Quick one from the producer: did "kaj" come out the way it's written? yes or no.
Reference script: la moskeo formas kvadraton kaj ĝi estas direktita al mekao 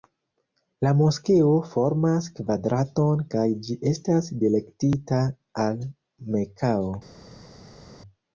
yes